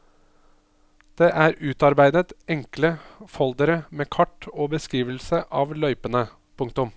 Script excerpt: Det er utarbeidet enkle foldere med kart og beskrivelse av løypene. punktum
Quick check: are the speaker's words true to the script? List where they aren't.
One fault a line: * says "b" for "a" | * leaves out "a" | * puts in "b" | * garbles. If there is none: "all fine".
all fine